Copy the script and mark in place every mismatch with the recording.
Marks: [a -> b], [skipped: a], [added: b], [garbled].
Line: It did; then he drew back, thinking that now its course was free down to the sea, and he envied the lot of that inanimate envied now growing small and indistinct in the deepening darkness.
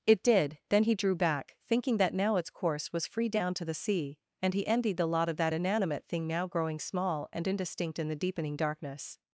It did; then he drew back, thinking that now its course was free down to the sea, and he envied the lot of that inanimate [envied -> thing] now growing small and indistinct in the deepening darkness.